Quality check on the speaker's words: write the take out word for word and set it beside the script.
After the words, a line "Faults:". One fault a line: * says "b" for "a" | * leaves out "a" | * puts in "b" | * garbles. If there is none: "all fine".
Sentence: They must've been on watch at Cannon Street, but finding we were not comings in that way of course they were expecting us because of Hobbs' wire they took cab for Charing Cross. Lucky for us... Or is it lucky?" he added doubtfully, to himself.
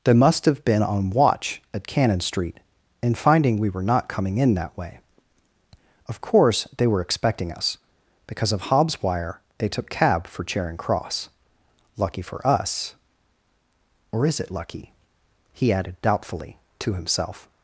They must've been on watch at Cannon Street, and finding we were not coming in that way of course they were expecting us because of Hobbs' wire they took cab for Charing Cross. Lucky for us... Or is it lucky?" he added doubtfully, to himself.
Faults:
* says "and" for "but"
* says "coming" for "comings"